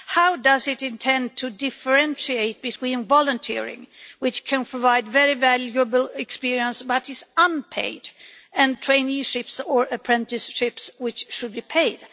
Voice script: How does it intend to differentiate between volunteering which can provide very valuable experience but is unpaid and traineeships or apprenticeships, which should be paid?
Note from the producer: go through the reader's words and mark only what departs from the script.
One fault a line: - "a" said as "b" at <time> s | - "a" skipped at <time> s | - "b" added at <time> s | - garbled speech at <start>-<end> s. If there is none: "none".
none